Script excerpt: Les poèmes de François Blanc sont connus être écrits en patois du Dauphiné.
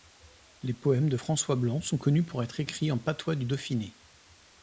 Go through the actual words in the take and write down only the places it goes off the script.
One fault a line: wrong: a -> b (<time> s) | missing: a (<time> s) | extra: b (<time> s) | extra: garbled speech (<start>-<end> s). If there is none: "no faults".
extra: pour (2.3 s)